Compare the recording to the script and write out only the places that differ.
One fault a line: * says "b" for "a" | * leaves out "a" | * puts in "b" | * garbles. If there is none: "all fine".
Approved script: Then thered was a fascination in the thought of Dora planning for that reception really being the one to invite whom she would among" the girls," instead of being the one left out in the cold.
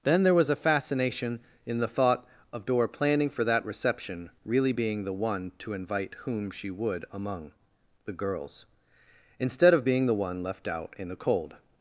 * says "there" for "thered"